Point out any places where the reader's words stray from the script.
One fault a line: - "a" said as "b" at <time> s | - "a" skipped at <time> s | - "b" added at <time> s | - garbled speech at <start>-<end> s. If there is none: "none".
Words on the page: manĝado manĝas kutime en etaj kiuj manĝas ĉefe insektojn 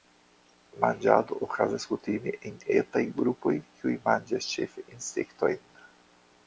- "manĝas" said as "okazas" at 1.5 s
- "grupoj" added at 3.2 s